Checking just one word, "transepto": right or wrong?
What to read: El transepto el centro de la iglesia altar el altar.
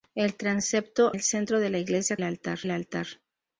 right